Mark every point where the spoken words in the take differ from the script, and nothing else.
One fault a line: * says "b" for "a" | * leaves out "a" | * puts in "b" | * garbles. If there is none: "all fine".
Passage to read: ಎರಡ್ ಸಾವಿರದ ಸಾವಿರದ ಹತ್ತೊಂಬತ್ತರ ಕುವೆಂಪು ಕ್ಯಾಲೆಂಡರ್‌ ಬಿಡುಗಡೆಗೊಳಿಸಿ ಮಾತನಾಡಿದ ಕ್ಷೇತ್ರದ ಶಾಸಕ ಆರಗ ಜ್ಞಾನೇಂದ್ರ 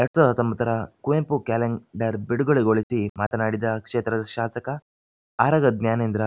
* leaves out "ಸಾವಿರದ"